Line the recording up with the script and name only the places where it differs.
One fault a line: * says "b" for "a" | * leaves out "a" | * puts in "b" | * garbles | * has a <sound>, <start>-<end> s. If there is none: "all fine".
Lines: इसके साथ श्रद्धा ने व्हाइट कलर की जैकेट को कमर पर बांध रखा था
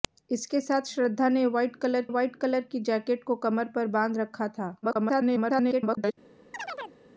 * puts in "व्हाइट कलर"
* garbles
* has a chirp, 6.5-7.0 s